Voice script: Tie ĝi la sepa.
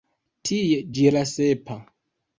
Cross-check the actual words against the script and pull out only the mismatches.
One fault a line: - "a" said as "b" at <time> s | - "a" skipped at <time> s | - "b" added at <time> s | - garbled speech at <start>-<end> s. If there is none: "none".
none